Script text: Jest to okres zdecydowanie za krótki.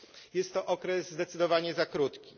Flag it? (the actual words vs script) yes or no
no